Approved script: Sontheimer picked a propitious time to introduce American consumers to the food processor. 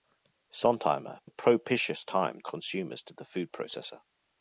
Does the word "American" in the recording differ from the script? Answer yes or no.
yes